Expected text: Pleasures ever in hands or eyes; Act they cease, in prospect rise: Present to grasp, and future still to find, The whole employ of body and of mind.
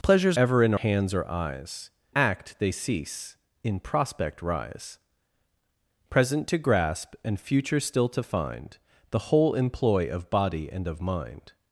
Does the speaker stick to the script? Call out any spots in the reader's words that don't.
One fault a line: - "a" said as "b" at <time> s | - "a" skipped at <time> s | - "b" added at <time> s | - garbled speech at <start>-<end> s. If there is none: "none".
none